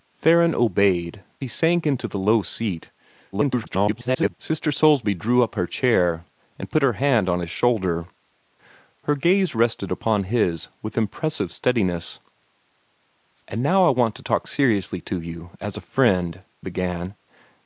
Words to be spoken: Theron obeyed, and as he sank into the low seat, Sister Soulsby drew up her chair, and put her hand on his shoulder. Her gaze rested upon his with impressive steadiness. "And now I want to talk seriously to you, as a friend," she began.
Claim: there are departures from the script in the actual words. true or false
true